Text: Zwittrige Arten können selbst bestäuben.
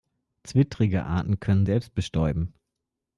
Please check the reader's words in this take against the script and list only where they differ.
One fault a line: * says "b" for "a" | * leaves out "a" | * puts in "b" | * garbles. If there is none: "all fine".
all fine